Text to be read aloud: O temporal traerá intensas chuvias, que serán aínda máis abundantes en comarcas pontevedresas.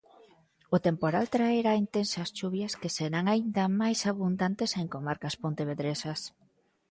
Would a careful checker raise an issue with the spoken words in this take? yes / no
no